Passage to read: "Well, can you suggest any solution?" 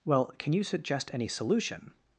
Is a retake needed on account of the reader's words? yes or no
no